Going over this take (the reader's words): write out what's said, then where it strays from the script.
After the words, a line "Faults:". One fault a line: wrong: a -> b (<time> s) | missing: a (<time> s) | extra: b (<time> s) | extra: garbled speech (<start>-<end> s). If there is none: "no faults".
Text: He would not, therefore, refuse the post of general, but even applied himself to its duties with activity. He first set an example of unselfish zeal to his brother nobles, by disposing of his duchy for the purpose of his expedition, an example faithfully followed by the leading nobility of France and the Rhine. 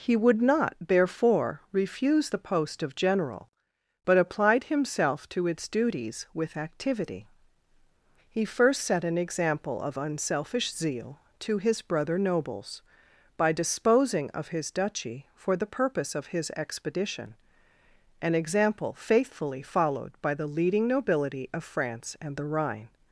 He would not, therefore, refuse the post of general, but applied himself to its duties with activity. He first set an example of unselfish zeal to his brother nobles, by disposing of his duchy for the purpose of his expedition, an example faithfully followed by the leading nobility of France and the Rhine.
Faults:
missing: even (4.2 s)